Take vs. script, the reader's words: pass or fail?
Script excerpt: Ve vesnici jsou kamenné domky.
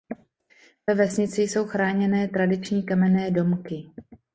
fail